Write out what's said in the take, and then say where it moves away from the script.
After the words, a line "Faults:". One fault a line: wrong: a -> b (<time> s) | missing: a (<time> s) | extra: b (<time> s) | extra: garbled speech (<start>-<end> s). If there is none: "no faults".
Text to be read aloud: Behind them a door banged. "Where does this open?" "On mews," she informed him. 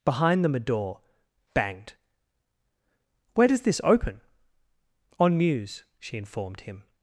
Behind them a door banged. "Where does this open?" "On mews," she informed him.
Faults:
no faults